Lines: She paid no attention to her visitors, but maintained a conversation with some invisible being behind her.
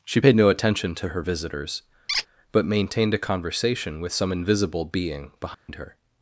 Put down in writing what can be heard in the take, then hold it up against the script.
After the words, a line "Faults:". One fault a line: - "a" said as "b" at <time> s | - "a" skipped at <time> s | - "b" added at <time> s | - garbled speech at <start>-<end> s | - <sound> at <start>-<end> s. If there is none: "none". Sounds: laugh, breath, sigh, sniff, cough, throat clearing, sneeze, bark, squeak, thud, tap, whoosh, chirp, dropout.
She paid no attention to her visitors, but maintained a conversation with some invisible being behind her.
Faults:
- squeak at 2.1-2.3 s
- dropout at 5.5-5.7 s